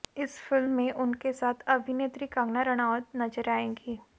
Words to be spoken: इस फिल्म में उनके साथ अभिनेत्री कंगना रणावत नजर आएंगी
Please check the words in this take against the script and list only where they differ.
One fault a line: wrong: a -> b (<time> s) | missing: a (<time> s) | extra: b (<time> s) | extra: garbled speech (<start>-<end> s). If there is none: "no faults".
no faults